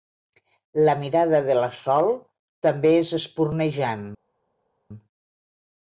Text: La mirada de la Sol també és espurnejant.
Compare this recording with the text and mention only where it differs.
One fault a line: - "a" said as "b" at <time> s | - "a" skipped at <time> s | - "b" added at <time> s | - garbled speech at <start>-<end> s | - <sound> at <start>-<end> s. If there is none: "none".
none